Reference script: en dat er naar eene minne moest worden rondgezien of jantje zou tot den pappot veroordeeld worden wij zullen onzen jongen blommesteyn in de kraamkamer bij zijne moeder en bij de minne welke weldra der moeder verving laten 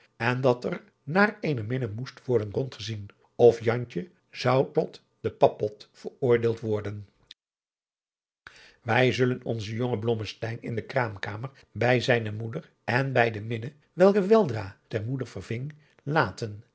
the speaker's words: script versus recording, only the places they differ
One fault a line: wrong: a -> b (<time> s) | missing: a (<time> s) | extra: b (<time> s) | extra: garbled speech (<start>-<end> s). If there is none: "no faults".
no faults